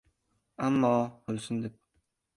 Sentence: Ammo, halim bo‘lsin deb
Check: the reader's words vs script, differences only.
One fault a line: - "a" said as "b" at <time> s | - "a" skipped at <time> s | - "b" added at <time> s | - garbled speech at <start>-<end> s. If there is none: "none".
- "halim" skipped at 0.9 s